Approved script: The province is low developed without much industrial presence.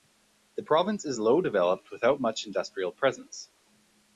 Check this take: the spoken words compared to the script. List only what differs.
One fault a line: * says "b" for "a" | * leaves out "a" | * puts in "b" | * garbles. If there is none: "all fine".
all fine